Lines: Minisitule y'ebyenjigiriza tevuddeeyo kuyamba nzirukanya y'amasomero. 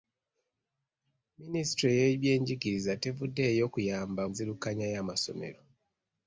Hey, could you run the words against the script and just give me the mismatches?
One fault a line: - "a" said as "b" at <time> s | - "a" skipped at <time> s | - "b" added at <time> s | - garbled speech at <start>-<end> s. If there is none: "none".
none